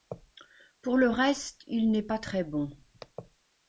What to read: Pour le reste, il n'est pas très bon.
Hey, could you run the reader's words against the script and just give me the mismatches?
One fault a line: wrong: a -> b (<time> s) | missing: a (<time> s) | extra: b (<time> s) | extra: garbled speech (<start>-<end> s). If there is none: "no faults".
no faults